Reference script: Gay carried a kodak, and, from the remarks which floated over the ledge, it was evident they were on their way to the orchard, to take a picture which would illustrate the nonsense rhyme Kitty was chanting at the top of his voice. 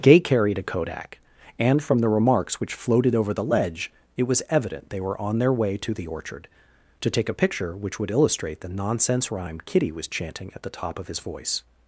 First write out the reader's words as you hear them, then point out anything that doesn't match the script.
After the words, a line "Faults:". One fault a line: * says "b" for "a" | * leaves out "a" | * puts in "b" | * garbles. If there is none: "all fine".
Gay carried a kodak, and, from the remarks which floated over the ledge, it was evident they were on their way to the orchard, to take a picture which would illustrate the nonsense rhyme Kitty was chanting at the top of his voice.
Faults:
all fine